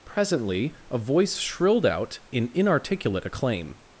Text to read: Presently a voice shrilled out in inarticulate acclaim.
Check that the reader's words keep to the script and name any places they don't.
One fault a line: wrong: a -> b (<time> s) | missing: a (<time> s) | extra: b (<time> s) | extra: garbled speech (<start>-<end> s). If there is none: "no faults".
no faults